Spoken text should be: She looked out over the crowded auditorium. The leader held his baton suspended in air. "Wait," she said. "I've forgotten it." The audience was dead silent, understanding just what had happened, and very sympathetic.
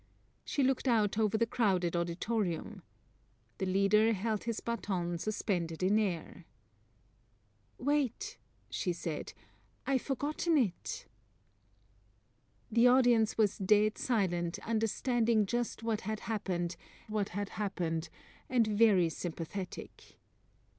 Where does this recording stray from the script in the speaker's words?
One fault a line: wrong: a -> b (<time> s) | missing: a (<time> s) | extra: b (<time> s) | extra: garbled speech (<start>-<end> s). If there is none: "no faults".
extra: what had happened (17.1 s)